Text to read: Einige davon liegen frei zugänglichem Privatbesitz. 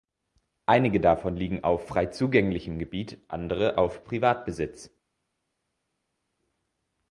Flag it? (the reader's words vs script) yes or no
yes